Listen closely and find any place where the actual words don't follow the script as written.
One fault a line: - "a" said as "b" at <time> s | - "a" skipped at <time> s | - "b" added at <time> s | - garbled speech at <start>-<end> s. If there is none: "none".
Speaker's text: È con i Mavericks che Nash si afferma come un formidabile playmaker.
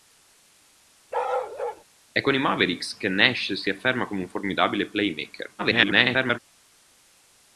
- garbled speech at 5.6-6.4 s